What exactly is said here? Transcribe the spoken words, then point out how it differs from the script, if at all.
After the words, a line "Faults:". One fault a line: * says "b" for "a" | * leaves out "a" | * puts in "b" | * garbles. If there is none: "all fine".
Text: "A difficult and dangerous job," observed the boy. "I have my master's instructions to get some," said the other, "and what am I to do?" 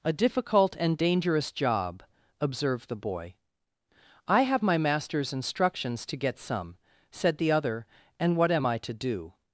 "A difficult and dangerous job," observed the boy. "I have my master's instructions to get some," said the other, "and what am I to do?"
Faults:
all fine